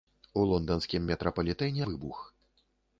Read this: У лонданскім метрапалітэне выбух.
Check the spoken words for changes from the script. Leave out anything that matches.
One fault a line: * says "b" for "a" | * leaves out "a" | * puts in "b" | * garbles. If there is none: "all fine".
all fine